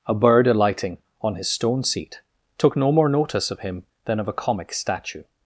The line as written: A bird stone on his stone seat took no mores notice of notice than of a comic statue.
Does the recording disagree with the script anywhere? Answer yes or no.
yes